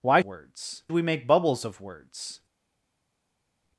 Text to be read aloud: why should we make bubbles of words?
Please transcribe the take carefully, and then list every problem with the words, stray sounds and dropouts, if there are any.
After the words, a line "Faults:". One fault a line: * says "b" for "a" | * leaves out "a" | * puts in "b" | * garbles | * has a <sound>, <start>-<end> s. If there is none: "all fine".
why words we make bubbles of words?
Faults:
* says "words" for "should"